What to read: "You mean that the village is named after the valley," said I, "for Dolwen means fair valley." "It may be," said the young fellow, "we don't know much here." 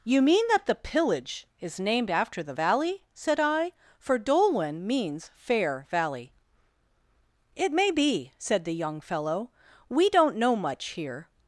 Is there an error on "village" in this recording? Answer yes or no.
yes